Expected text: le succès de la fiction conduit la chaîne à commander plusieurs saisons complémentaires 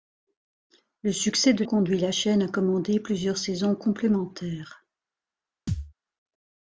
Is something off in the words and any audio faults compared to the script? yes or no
yes